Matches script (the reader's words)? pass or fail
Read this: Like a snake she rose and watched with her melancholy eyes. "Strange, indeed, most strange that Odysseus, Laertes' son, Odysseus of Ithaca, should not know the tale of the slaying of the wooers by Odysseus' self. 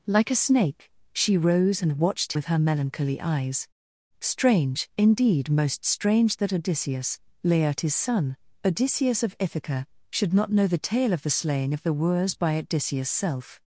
pass